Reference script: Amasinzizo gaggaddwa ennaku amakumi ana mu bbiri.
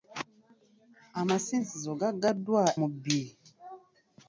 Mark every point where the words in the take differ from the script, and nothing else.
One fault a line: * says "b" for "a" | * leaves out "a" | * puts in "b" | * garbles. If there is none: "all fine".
* leaves out "ennaku amakumi ana"